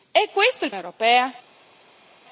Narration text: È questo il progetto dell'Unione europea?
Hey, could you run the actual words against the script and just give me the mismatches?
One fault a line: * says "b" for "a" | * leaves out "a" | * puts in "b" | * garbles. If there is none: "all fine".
* leaves out "progetto dell'Unione"